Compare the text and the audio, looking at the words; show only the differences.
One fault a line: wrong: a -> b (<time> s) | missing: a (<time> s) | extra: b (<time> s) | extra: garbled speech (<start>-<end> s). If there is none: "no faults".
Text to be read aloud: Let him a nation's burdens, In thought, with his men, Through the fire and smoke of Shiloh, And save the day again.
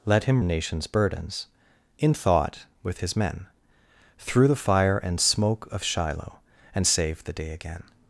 no faults